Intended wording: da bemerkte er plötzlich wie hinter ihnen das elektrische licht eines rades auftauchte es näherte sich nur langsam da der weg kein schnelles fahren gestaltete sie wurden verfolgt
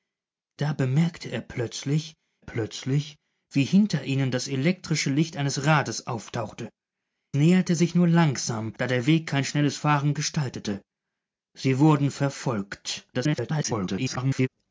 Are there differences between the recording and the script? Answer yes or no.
yes